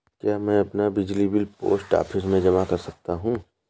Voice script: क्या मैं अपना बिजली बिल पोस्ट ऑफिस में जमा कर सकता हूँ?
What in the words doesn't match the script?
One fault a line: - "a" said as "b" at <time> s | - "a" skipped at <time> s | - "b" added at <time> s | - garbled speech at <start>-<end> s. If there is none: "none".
none